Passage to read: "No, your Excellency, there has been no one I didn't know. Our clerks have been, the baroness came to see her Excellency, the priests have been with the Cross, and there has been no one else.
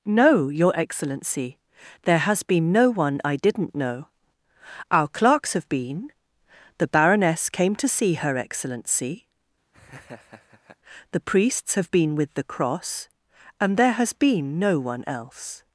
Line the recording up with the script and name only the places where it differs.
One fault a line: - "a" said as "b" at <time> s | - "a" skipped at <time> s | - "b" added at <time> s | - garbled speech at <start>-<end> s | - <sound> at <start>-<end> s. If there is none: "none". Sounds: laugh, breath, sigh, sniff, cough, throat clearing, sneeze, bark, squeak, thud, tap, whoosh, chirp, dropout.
- laugh at 9.7-10.8 s